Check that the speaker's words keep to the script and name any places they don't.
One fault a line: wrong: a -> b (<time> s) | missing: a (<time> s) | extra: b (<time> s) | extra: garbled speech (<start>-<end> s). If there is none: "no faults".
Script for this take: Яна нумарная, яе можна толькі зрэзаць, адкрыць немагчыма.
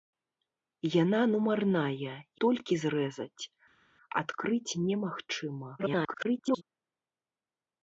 missing: яе можна (2.1 s)
extra: garbled speech (5.8-6.6 s)